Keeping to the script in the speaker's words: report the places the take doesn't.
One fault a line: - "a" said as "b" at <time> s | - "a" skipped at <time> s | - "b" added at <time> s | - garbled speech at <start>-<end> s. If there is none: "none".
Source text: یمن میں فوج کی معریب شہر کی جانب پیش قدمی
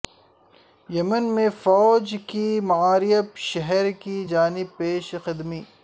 none